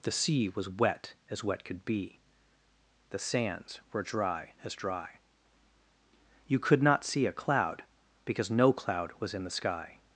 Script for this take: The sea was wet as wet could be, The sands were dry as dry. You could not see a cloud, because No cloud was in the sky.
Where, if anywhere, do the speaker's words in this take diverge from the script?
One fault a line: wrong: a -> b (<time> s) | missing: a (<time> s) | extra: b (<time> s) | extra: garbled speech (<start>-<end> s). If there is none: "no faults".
no faults